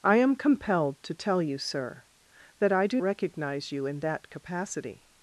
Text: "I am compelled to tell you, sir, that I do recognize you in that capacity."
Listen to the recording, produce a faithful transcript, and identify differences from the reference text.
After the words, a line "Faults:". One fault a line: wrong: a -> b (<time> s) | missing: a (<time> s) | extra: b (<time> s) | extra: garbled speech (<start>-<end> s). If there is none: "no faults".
"I am compelled to tell you, sir, that I do recognize you in that capacity."
Faults:
no faults